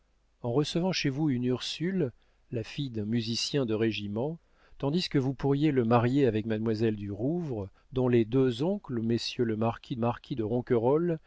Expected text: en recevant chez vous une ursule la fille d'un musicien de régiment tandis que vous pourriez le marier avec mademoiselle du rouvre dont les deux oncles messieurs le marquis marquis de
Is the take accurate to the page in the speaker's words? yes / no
yes